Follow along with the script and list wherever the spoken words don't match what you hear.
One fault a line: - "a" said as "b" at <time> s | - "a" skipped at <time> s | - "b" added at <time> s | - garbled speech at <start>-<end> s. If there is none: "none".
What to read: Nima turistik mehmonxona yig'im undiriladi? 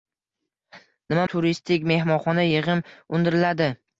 none